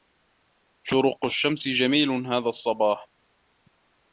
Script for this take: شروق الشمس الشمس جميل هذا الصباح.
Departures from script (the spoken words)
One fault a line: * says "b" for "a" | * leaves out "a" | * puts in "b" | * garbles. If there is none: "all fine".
* leaves out "الشمس"